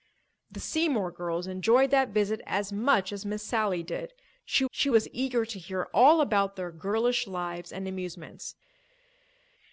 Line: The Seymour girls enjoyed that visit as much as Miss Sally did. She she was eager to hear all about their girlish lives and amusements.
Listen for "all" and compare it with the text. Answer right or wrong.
right